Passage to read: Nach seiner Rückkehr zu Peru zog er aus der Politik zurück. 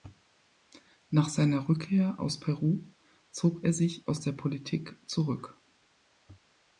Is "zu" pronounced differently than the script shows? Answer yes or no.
yes